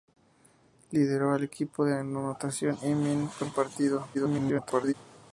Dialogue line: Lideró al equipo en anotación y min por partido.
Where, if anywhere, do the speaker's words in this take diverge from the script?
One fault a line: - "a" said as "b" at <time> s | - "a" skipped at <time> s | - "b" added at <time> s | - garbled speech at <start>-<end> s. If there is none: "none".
- garbled speech at 4.1-4.9 s